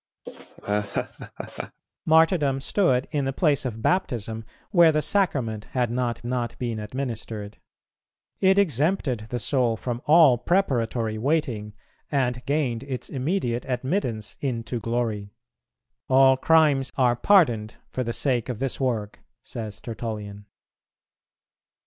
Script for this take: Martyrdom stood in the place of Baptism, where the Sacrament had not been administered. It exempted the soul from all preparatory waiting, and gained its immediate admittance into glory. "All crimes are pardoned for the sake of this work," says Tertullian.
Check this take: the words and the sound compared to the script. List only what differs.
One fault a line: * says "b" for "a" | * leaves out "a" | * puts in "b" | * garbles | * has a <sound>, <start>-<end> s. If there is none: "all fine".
* has a laugh, 0.3-1.8 s
* puts in "not"